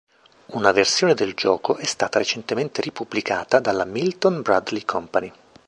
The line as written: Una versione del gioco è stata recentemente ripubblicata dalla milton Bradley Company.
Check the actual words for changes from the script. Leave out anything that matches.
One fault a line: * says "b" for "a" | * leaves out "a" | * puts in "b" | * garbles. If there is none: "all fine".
all fine